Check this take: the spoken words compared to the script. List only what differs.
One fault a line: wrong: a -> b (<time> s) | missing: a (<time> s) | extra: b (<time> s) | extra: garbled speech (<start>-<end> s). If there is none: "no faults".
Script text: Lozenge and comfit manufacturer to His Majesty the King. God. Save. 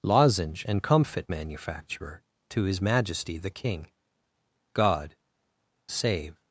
no faults